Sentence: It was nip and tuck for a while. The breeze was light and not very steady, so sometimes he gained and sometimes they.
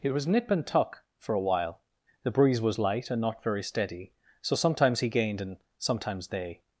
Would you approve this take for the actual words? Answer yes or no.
yes